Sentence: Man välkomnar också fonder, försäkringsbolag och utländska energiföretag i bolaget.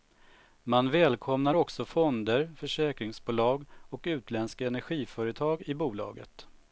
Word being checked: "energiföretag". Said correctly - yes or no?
yes